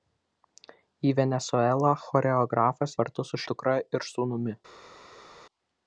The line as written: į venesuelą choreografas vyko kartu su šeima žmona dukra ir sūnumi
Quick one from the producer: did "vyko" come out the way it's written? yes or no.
no